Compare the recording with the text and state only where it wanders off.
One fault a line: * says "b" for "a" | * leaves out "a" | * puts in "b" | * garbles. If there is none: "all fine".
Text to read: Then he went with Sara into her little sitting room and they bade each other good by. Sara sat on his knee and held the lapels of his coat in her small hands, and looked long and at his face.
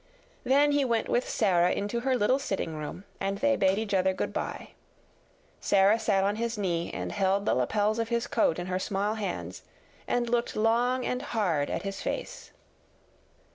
* puts in "hard"